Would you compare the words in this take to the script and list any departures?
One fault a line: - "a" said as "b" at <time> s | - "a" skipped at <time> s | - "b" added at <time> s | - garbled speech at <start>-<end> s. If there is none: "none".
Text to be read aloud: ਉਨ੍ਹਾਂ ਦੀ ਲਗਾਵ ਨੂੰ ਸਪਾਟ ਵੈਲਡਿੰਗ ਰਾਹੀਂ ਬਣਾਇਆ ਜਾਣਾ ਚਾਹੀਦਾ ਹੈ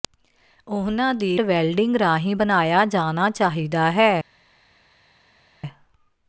- "ਲਗਾਵ ਨੂੰ ਸਪਾਟ" skipped at 1.4 s